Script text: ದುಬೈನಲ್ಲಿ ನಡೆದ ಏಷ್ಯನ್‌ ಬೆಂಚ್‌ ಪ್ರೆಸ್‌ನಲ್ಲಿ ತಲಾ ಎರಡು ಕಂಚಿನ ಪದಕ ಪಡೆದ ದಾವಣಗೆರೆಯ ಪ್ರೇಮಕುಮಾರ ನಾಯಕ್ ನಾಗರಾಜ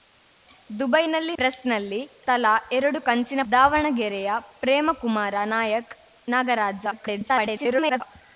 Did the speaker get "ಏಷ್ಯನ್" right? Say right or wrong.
wrong